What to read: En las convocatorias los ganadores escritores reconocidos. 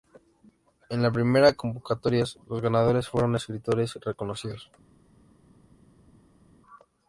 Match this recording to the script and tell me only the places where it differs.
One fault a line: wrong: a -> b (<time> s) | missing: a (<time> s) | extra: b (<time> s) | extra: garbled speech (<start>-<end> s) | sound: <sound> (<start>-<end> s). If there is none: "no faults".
extra: primeras (1.1 s)
extra: fueron (3.1 s)